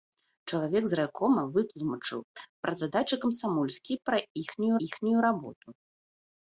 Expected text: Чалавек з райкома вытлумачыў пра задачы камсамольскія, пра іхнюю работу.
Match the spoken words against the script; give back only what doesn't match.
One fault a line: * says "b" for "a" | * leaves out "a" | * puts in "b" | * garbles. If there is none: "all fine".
* puts in "іхнюю"